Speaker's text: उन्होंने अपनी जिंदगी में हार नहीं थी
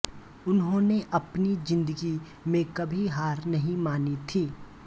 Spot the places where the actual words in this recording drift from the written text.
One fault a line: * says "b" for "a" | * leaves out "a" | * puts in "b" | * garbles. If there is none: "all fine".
* puts in "कभी"
* puts in "मानी"